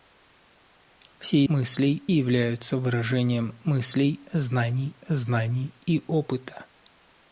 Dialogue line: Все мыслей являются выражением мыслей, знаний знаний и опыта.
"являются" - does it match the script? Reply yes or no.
yes